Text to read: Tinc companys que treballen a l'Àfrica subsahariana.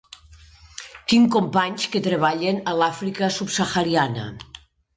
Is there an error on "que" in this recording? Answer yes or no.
no